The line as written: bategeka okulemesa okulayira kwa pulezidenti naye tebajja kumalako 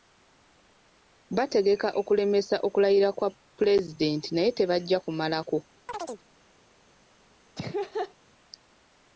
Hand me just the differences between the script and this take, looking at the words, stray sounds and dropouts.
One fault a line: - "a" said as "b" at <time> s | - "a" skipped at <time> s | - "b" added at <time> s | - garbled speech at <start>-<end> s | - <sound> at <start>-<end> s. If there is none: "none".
- chirp at 5.9-6.2 s
- laugh at 7.6-8.1 s